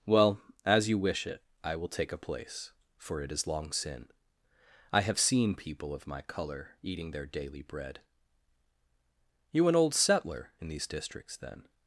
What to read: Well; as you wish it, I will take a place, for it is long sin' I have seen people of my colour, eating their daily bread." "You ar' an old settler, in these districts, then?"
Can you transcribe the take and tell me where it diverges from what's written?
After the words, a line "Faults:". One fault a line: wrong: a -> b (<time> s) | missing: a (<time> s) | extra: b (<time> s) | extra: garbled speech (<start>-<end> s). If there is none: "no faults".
Well; as you wish it, I will take a place, for it is long sin' I have seen people of my colour, eating their daily bread." "You' an old settler, in these districts, then?"
Faults:
missing: ar (9.7 s)